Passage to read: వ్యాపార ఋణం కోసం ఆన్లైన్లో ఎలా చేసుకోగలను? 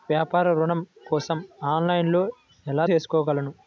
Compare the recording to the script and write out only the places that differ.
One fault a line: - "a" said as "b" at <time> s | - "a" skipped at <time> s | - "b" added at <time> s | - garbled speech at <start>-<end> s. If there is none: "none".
none